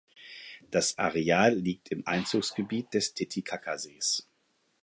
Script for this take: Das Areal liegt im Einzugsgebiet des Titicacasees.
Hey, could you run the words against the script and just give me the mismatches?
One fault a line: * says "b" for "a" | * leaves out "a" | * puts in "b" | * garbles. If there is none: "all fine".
all fine